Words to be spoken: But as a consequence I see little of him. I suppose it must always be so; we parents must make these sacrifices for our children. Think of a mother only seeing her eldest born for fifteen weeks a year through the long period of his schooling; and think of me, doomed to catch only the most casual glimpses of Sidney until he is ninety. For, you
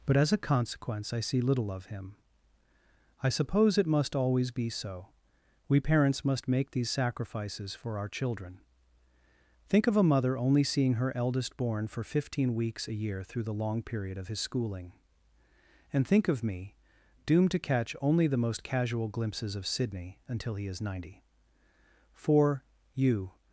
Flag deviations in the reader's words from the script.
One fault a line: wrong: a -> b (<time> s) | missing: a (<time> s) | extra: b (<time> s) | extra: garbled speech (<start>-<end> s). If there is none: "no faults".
no faults